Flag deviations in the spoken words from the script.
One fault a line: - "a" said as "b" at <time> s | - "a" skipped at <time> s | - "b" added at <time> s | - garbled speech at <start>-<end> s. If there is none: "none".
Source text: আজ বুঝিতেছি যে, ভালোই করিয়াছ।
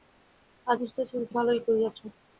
none